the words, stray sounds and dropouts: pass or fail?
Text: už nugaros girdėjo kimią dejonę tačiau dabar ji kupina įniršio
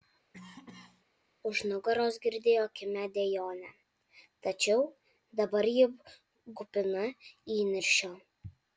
fail